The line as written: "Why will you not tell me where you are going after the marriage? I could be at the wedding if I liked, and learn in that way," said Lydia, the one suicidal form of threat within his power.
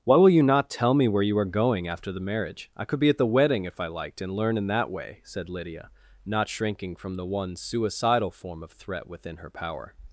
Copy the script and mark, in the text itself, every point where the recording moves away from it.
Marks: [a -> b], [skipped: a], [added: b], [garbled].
"Why will you not tell me where you are going after the marriage? I could be at the wedding if I liked, and learn in that way," said Lydia, [added: not shrinking from] the one suicidal form of threat within [his -> her] power.